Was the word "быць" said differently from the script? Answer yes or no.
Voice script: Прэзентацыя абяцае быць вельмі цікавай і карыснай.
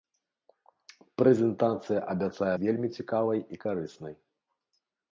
yes